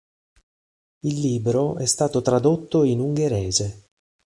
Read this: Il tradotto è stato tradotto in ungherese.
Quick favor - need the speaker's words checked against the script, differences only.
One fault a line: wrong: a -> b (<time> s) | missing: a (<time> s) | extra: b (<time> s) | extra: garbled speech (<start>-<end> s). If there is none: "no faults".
wrong: tradotto -> libro (1.2 s)